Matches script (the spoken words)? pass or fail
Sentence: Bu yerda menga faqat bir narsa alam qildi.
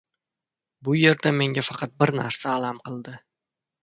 pass